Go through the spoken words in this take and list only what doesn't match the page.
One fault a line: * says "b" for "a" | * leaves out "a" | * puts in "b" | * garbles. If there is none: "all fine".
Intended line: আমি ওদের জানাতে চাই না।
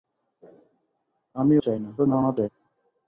* leaves out "ওদের জানাতে"
* garbles